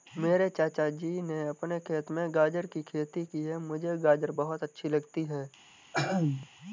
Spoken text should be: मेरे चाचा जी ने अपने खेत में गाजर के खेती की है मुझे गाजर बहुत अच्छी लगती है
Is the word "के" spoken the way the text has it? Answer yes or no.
no